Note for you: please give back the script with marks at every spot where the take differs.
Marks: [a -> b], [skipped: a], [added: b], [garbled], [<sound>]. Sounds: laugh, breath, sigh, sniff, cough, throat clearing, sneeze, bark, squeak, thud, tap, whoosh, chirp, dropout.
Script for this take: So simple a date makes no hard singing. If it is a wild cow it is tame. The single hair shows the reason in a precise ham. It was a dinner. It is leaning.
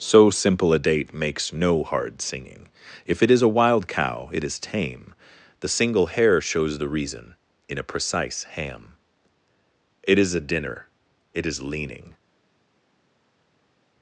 So simple a date makes no hard singing. If it is a wild cow it is tame. The single hair shows the reason in a precise ham. It [was -> is] a dinner. It is leaning.